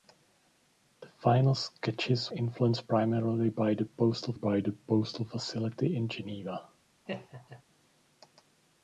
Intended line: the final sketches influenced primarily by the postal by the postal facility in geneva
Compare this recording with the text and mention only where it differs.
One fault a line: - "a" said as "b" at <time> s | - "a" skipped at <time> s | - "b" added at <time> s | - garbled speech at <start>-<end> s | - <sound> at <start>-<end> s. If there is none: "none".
- laugh at 7.1-7.6 s